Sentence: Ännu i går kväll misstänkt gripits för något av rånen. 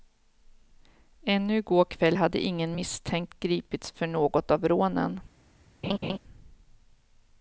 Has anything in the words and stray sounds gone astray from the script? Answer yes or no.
yes